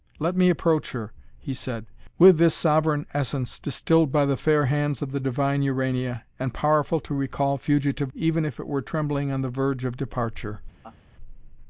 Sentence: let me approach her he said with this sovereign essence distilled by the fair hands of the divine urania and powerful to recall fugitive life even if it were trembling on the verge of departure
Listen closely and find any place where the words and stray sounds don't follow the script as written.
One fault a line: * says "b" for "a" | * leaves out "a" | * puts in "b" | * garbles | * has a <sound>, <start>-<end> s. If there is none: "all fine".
* leaves out "life"
* has a laugh, 10.8-11.0 s